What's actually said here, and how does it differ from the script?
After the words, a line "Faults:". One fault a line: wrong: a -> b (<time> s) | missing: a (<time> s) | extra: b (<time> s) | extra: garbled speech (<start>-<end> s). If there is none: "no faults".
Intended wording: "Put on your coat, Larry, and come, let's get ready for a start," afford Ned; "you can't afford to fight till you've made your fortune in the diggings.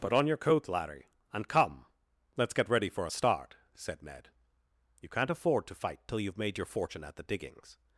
"Put on your coat, Larry, and come, let's get ready for a start," said Ned; "you can't afford to fight till you've made your fortune at the diggings.
Faults:
wrong: afford -> said (3.7 s)
wrong: in -> at (7.0 s)